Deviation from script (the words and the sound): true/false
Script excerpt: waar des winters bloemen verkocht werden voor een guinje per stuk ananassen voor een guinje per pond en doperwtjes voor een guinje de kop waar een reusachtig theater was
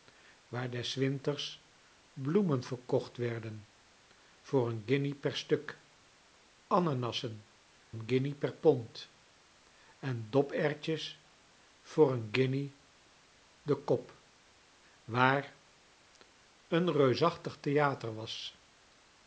true